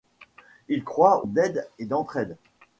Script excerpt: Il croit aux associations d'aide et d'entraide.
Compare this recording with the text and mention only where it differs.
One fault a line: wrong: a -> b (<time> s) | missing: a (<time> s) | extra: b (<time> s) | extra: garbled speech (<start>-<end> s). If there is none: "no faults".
missing: aux associations (1.3 s)